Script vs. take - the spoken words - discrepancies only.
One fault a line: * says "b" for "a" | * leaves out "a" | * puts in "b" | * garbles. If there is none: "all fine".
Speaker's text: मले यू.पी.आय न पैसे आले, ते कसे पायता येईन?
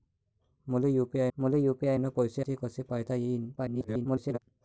* puts in "मले यू.पी.आय"
* leaves out "आले"
* garbles